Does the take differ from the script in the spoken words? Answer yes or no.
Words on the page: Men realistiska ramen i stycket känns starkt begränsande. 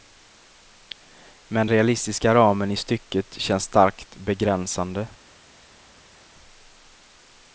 no